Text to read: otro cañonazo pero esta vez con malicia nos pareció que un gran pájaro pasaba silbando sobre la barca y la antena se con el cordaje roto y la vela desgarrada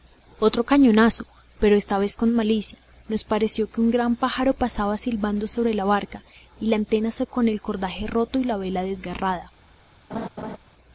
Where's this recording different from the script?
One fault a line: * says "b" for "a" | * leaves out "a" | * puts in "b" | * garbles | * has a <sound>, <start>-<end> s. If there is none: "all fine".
* has a laugh, 10.1-10.6 s